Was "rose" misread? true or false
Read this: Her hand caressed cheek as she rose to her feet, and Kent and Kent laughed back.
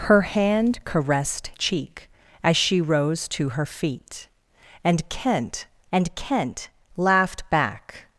false